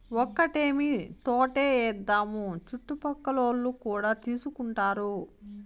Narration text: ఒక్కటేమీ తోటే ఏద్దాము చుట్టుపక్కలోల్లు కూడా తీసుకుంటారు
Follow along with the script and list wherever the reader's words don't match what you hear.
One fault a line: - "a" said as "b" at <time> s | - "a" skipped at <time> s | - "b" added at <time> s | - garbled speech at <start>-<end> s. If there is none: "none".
none